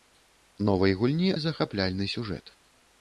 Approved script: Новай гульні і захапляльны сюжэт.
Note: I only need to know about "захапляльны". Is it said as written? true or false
true